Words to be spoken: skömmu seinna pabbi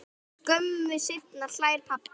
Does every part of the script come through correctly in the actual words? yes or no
no